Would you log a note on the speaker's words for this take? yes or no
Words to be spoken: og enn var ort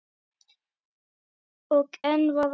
no